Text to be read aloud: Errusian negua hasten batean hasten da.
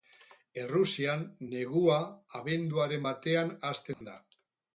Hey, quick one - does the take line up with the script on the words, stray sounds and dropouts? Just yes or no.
no